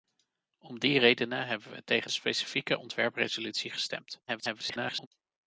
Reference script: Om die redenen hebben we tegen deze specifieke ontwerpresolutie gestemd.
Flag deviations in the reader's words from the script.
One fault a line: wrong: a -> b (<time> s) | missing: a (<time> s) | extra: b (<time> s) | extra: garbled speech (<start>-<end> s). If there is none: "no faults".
missing: deze (2.1 s)
extra: garbled speech (4.3-5.1 s)